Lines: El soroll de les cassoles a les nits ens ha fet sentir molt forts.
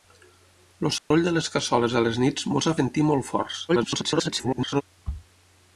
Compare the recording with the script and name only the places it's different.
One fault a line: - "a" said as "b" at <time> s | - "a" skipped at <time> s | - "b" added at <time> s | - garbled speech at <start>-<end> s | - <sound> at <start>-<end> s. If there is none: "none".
- dropout at 1.0-1.1 s
- "fet" skipped at 2.8 s
- garbled speech at 3.7-4.8 s